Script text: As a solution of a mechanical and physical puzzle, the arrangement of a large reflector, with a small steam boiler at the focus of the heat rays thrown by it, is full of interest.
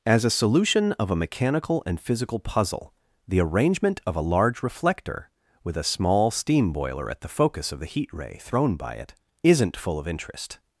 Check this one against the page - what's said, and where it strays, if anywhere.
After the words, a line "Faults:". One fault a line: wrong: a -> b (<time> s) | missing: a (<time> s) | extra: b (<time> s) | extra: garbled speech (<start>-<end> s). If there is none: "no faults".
As a solution of a mechanical and physical puzzle, the arrangement of a large reflector, with a small steam boiler at the focus of the heat ray thrown by it, isn't full of interest.
Faults:
wrong: rays -> ray (8.1 s)
wrong: is -> isn't (9.4 s)